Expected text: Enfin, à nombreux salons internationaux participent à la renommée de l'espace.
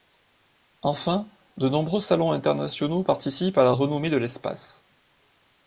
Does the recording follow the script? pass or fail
fail